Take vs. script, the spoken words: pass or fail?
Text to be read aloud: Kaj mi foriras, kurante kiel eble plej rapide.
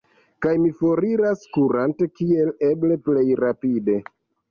pass